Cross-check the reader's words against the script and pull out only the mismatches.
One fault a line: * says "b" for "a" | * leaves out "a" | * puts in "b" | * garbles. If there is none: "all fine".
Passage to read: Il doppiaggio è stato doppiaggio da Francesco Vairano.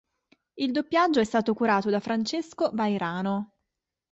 * says "curato" for "doppiaggio"